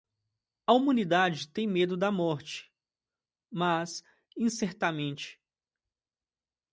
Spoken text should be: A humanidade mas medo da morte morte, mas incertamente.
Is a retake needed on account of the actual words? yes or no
yes